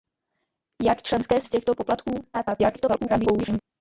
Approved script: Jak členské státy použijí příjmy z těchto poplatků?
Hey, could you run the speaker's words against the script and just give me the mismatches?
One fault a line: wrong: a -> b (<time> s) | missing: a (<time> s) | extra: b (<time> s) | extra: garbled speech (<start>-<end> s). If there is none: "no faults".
missing: státy použijí příjmy (1.4 s)
extra: garbled speech (2.3-3.6 s)